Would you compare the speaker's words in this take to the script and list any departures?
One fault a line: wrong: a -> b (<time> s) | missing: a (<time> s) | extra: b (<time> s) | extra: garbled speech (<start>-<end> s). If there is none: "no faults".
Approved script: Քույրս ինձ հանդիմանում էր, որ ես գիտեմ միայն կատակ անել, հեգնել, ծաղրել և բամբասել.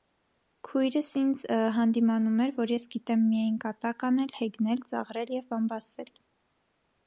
no faults